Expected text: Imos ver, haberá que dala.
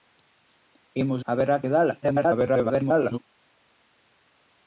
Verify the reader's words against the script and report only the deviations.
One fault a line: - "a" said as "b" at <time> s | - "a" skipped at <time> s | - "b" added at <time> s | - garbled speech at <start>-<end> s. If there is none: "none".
- "ver" skipped at 1.2 s
- garbled speech at 2.0-3.2 s